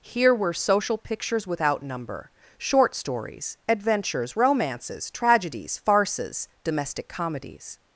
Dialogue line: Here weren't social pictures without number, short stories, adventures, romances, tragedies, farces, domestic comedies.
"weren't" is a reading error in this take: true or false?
true